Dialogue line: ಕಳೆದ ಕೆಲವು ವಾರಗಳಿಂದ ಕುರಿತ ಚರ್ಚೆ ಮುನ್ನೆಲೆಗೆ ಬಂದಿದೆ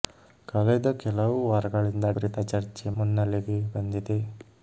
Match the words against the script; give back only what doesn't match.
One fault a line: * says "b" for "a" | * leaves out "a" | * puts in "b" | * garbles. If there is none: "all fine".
all fine